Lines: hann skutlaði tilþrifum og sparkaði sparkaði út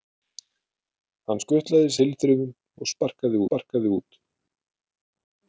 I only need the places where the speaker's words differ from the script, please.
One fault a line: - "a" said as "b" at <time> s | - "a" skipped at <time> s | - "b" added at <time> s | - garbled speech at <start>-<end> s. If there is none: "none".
none